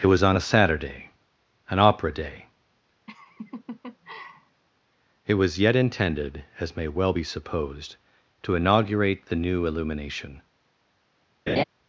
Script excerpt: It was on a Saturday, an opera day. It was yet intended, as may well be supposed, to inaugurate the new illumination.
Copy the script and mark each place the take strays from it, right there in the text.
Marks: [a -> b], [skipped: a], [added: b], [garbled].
It was on a Saturday, an opera day. It was yet intended, as may well be supposed, to inaugurate the new illumination.